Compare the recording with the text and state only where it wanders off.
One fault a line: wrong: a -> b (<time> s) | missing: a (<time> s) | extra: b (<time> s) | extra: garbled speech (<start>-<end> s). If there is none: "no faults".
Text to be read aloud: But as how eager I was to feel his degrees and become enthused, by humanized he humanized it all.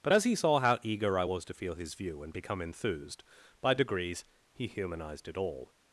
extra: he saw (0.2 s)
wrong: degrees -> view (1.9 s)
wrong: humanized -> degrees (3.7 s)